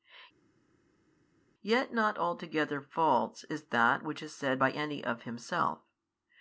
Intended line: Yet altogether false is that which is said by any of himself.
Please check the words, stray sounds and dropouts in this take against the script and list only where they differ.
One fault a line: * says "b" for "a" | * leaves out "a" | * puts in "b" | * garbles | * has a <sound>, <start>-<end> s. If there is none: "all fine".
* puts in "not"